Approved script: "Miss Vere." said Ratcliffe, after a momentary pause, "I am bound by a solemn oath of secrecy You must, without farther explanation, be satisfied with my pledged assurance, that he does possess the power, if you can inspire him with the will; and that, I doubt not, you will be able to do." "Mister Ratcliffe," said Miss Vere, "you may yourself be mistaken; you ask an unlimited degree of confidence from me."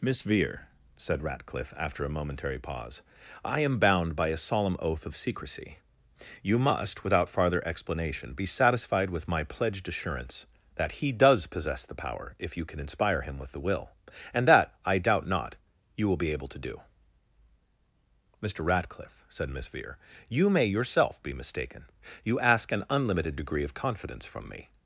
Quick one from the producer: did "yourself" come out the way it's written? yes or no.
yes